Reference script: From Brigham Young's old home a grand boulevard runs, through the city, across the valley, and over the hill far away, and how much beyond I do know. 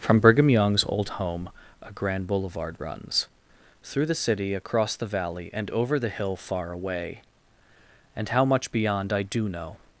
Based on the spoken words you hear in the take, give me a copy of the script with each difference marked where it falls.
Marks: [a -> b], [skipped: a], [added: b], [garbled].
From Brigham Young's old home a grand boulevard runs, through the city, across the valley, and over the hill far away, and how much beyond I do know.